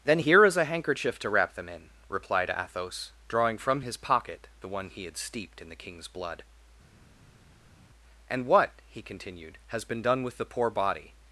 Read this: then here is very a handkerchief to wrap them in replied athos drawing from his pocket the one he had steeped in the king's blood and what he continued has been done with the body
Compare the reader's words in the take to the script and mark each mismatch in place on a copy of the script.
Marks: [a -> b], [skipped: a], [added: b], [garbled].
then here is [skipped: very] a handkerchief to wrap them in replied athos drawing from his pocket the one he had steeped in the king's blood and what he continued has been done with the [added: poor] body